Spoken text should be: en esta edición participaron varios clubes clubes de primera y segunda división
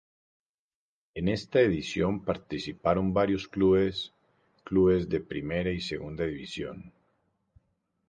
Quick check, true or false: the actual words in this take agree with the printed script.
true